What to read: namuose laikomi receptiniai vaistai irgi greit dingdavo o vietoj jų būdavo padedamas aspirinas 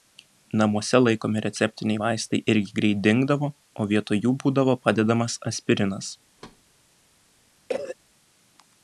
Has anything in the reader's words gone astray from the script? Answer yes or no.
no